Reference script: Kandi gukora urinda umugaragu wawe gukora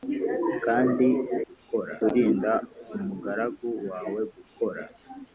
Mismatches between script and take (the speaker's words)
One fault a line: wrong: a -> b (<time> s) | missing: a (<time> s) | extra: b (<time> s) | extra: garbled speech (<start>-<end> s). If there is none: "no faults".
no faults